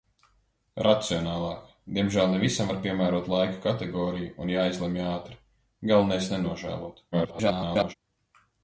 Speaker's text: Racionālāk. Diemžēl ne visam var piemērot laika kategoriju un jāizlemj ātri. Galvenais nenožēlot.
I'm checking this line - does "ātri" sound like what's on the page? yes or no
yes